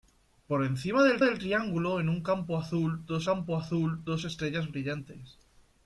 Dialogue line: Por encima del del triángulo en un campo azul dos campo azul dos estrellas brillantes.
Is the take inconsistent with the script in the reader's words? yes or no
no